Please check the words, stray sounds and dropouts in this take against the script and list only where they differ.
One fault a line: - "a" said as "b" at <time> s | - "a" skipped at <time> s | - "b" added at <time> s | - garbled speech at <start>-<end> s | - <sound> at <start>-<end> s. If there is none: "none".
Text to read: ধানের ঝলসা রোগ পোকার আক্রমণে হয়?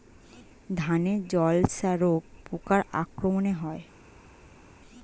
none